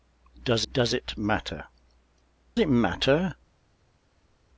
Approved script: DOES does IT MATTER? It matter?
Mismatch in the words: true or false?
false